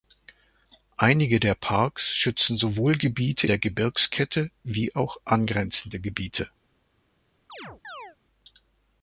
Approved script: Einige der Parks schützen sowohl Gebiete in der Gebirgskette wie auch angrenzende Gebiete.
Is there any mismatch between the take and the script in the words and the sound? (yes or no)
yes